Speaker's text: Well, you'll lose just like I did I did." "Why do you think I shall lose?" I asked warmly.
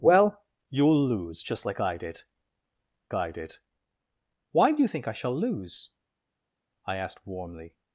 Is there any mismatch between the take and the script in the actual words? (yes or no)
no